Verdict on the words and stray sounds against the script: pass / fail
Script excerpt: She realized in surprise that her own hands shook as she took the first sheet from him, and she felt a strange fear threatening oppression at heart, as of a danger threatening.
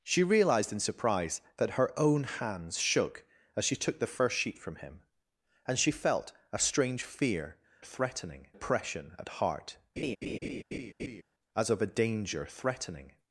fail